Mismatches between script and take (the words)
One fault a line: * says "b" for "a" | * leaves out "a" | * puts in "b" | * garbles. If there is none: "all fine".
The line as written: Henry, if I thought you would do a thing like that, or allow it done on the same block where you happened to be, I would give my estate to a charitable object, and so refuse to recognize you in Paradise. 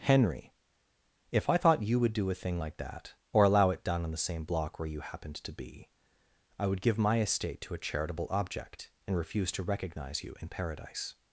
* leaves out "so"